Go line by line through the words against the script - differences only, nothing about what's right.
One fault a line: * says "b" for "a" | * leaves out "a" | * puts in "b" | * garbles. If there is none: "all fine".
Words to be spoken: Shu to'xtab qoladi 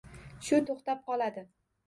all fine